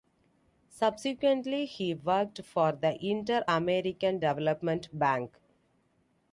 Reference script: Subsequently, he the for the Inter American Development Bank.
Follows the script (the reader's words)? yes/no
no